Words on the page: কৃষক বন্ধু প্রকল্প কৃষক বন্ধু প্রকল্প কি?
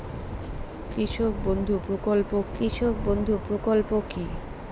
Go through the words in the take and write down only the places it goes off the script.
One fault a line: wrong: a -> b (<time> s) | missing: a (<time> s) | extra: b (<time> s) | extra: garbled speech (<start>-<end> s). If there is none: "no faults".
no faults